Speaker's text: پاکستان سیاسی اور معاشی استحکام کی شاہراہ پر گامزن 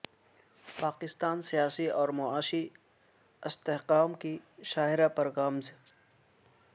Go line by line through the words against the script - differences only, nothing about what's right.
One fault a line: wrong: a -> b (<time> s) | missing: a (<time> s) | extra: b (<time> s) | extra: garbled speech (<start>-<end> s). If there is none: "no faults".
no faults